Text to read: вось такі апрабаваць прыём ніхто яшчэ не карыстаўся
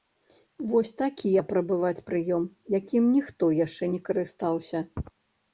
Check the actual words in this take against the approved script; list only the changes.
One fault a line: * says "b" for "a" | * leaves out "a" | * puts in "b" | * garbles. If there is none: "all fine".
* puts in "якім"